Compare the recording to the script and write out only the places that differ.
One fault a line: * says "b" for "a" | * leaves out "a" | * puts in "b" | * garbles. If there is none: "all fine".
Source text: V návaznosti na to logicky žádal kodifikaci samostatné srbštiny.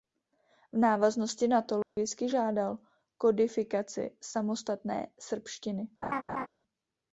all fine